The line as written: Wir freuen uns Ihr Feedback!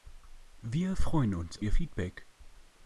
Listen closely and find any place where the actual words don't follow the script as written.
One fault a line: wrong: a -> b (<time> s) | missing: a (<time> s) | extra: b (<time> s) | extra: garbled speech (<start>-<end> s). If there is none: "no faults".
no faults